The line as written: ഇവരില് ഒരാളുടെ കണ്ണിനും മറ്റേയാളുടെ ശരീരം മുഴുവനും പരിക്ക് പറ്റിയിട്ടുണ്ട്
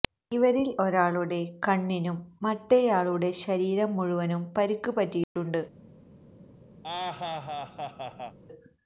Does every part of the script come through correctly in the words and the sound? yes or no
no